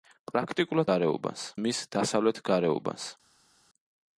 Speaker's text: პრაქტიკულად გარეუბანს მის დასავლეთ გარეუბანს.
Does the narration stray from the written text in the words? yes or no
no